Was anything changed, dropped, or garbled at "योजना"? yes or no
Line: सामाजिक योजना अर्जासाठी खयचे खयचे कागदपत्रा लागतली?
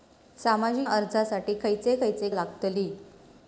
yes